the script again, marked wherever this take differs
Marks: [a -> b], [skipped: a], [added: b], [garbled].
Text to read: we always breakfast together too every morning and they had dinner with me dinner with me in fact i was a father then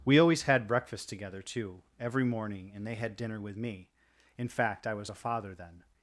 we always [added: had] breakfast together too every morning and they had dinner with me [skipped: dinner with me] in fact i was a father then